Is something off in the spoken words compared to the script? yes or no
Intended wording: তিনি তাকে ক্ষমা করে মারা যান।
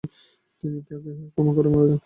no